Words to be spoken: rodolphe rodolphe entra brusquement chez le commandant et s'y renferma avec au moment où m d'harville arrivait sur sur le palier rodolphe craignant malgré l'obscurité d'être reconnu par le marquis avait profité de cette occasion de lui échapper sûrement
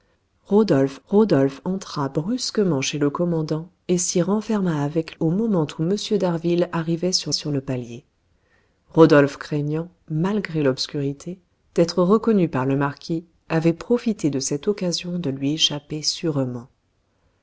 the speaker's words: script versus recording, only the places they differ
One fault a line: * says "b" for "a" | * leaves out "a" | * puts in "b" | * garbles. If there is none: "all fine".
all fine